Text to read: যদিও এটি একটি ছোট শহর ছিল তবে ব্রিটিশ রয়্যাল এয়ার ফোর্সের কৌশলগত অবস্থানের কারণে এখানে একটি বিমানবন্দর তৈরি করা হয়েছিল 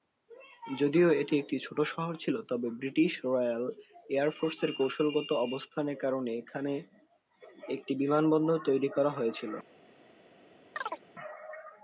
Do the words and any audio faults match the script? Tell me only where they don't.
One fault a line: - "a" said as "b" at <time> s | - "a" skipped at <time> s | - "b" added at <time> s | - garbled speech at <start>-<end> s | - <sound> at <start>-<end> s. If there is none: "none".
- chirp at 10.8-11.0 s